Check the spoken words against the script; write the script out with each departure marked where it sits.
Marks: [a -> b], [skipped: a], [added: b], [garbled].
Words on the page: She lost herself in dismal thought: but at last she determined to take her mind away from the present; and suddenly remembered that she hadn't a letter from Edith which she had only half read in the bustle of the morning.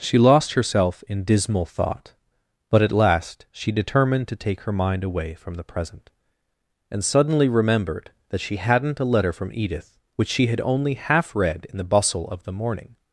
She lost herself in dismal thought: but at last she determined to take her mind away from the present; and suddenly remembered that she hadn't a letter from Edith which she had only half read in the bustle of the morning.